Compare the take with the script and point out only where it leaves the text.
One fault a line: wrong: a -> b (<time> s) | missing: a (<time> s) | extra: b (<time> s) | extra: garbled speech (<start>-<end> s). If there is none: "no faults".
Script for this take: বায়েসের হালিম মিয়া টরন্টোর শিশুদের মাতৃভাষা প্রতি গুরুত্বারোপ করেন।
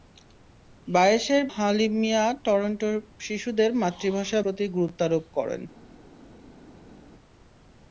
no faults